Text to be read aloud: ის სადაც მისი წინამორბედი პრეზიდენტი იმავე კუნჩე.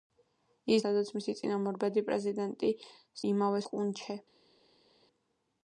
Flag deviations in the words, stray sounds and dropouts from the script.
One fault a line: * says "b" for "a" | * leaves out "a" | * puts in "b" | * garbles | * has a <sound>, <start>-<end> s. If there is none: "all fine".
all fine